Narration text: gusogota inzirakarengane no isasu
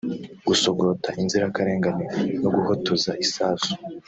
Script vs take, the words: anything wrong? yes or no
yes